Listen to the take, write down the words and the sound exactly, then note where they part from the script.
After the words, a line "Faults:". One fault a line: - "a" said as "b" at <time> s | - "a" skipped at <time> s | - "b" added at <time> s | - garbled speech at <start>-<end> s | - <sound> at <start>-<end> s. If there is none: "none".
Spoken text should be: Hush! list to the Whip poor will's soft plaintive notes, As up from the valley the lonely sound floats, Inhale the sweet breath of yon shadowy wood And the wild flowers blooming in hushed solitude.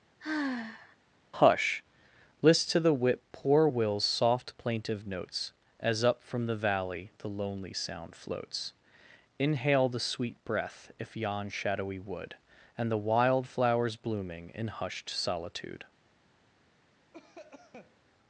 Hush! list to the Whip poor will's soft plaintive notes, As up from the valley the lonely sound floats, Inhale the sweet breath if yon shadowy wood And the wild flowers blooming in hushed solitude.
Faults:
- sigh at 0.2-1.0 s
- "of" said as "if" at 11.0 s
- cough at 17.1-18.0 s